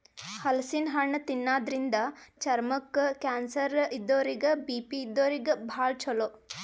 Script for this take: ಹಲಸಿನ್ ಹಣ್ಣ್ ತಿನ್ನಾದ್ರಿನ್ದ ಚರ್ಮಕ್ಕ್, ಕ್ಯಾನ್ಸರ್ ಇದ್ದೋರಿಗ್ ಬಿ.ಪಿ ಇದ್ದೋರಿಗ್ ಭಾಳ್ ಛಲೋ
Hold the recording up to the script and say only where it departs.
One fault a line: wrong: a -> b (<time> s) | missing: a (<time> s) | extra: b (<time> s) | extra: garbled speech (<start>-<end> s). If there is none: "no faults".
no faults